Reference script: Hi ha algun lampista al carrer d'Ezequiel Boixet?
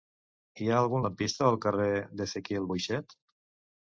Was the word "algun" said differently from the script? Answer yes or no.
no